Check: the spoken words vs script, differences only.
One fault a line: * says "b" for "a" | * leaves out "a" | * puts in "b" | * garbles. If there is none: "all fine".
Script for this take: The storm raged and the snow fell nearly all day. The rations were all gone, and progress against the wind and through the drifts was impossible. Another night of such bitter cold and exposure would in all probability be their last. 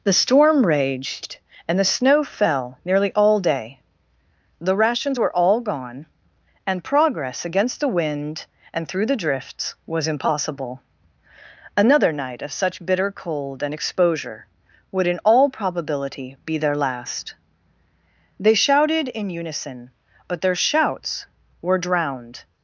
* puts in "They shouted in unison but their shouts were drowned"